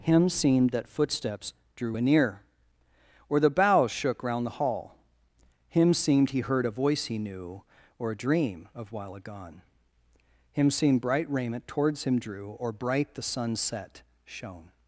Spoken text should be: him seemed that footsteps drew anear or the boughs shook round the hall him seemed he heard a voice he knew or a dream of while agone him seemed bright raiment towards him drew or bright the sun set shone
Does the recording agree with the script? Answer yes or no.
yes